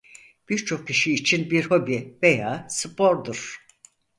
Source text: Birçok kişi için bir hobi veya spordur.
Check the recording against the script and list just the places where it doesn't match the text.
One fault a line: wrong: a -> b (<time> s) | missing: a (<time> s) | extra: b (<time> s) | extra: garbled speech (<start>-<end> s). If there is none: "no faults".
no faults